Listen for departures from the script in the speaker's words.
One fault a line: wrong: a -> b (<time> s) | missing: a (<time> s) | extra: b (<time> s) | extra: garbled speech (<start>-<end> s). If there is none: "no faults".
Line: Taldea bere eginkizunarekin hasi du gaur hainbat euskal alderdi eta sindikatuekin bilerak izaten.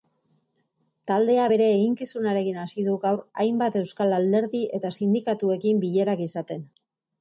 no faults